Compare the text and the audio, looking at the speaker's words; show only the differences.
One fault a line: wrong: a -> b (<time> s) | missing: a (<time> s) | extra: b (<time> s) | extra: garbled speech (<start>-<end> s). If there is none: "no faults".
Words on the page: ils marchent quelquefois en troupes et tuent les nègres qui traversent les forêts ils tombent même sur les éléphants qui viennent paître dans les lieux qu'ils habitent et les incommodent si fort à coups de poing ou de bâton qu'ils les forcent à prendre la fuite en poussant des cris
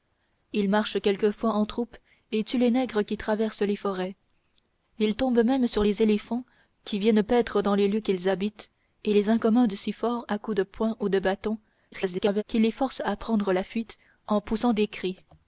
extra: garbled speech (11.9-12.4 s)